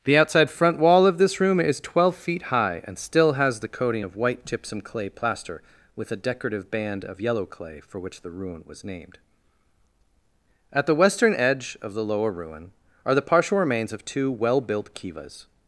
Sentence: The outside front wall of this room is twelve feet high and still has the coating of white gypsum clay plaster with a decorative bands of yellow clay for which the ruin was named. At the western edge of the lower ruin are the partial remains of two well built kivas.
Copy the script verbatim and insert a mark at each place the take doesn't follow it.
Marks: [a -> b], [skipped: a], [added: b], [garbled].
The outside front wall of this room is twelve feet high and still has the coating of white gypsum clay plaster with a decorative [bands -> band] of yellow clay for which the ruin was named. At the western edge of the lower ruin are the partial remains of two well built kivas.